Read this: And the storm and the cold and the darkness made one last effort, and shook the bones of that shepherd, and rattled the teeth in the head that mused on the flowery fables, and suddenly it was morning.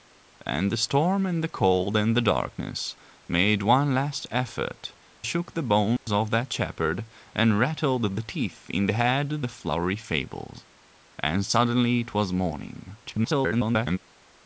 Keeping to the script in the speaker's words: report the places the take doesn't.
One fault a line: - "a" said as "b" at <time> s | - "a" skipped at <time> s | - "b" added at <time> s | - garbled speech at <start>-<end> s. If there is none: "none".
- "and" skipped at 5.0 s
- "that mused on" skipped at 9.3 s
- garbled speech at 13.0-14.0 s